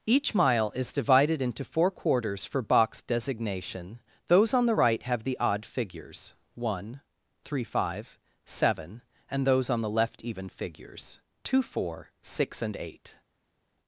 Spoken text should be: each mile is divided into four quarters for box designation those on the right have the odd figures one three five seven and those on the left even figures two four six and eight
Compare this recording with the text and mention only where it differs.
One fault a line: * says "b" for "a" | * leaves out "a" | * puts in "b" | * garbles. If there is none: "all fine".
all fine